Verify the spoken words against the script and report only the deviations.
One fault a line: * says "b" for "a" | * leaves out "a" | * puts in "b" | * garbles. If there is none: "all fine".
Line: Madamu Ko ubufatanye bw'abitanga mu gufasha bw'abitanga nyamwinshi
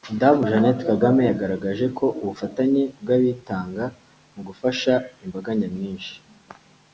* puts in "Jeannette Kagame yagaragaje"
* says "imbaga" for "bw'abitanga"